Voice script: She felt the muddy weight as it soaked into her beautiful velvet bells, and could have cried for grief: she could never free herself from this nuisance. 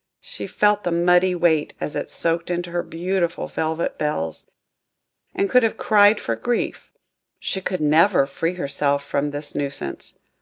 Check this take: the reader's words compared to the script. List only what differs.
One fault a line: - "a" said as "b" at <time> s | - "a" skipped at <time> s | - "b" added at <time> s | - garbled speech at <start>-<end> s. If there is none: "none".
none